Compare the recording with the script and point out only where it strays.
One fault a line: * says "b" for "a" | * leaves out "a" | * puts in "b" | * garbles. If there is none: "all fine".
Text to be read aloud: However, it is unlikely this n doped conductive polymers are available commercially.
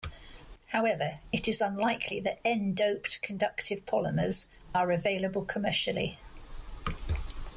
* says "that" for "this"